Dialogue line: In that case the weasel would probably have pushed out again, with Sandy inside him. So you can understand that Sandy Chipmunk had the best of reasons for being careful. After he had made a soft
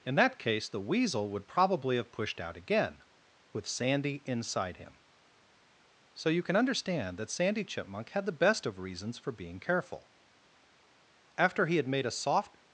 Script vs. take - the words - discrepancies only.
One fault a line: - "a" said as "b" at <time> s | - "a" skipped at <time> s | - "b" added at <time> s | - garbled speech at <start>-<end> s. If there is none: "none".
none